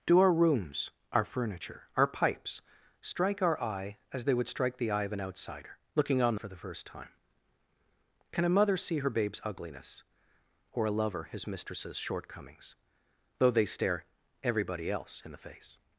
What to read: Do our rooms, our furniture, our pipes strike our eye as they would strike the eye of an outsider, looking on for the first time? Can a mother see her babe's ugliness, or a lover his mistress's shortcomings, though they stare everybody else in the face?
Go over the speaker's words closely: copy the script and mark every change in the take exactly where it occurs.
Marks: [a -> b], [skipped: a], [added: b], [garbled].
Do our rooms, our furniture, our pipes strike our eye as they would strike the eye of an outsider, looking on for the first time? Can a mother see her babe's ugliness, or a lover his mistress's shortcomings, though they stare everybody else in the face?